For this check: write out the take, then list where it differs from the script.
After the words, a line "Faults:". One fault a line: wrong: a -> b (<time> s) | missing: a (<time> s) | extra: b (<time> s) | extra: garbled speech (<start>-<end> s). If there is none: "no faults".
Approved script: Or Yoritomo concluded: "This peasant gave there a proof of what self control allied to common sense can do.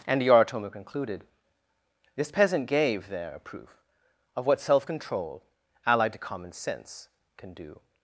And Yoritomo concluded: "This peasant gave there a proof of what self control allied to common sense can do.
Faults:
wrong: Or -> And (0.1 s)